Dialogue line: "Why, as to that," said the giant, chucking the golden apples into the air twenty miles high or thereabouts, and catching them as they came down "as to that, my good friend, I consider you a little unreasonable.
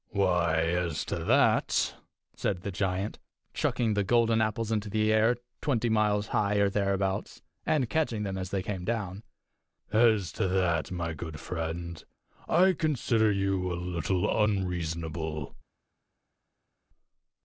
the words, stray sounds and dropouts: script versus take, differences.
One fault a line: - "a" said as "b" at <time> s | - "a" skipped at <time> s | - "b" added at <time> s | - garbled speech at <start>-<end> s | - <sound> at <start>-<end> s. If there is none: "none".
none